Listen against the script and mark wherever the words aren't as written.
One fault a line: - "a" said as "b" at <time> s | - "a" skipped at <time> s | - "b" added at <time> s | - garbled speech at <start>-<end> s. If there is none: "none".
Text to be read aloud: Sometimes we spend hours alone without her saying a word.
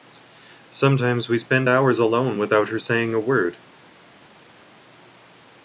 none